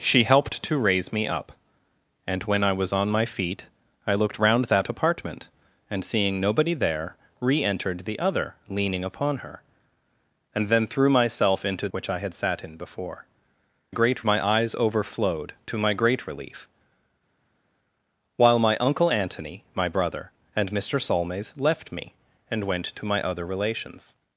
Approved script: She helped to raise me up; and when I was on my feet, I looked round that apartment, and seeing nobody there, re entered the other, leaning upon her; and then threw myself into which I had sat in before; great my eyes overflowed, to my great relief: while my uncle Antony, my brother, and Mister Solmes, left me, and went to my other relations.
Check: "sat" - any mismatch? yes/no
no